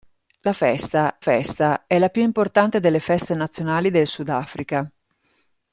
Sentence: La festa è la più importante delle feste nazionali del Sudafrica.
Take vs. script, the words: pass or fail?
fail